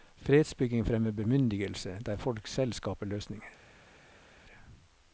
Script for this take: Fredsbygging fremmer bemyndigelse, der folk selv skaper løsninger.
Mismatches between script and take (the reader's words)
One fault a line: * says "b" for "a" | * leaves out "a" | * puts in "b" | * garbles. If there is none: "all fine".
all fine